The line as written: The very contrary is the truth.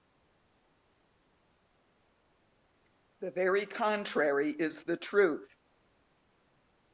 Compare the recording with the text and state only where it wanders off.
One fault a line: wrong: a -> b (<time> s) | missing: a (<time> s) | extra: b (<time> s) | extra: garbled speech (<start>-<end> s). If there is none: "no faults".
no faults